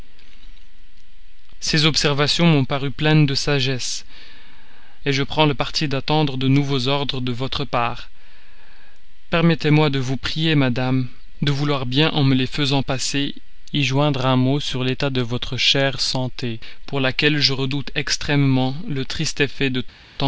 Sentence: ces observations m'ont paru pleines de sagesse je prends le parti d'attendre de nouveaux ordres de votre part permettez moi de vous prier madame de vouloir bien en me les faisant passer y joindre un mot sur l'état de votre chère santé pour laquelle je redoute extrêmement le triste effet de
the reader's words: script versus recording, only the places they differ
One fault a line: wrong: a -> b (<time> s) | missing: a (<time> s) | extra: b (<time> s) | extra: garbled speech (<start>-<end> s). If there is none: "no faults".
no faults